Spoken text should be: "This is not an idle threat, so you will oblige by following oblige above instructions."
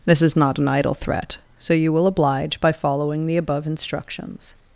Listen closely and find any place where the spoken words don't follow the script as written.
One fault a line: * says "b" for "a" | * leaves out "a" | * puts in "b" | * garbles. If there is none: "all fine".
* says "the" for "oblige"